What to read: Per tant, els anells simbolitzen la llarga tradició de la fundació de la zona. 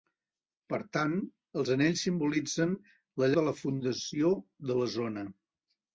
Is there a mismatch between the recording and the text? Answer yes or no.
yes